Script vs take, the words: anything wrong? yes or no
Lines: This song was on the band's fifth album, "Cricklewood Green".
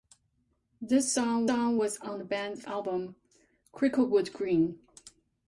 yes